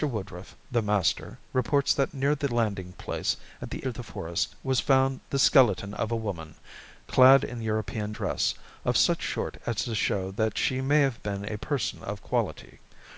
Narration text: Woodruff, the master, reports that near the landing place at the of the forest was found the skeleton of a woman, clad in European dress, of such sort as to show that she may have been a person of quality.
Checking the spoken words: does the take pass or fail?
pass